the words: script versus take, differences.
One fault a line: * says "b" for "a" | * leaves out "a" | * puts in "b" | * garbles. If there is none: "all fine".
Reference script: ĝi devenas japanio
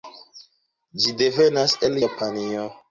* puts in "el"